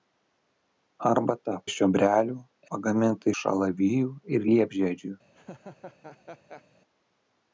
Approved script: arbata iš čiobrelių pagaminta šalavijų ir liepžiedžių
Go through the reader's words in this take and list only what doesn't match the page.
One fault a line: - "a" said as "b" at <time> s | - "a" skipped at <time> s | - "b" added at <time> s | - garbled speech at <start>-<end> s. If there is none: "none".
none